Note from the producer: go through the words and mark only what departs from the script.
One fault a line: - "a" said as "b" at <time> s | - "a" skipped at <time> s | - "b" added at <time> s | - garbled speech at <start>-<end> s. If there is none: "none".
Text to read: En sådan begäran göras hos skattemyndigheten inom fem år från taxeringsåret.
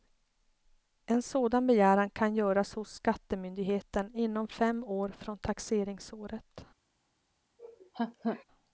- "kan" added at 2.1 s